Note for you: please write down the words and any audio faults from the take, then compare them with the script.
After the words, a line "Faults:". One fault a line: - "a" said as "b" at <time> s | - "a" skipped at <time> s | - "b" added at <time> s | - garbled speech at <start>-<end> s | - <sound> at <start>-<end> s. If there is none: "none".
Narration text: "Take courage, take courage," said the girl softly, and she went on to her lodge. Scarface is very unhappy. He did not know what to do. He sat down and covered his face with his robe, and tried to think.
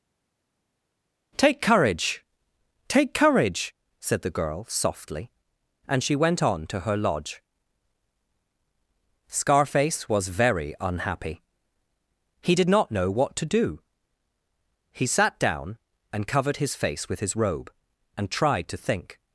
"Take courage, take courage," said the girl softly, and she went on to her lodge. Scarface was very unhappy. He did not know what to do. He sat down and covered his face with his robe, and tried to think.
Faults:
- "is" said as "was" at 10.1 s